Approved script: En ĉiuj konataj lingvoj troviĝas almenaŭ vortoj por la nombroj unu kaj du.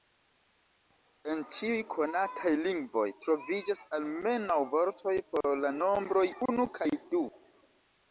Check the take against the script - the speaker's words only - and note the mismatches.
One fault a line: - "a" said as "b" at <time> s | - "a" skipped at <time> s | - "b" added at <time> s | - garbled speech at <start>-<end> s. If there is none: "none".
none